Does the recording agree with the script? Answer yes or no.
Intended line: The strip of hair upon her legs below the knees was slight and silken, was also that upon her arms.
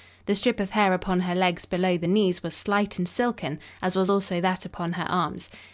no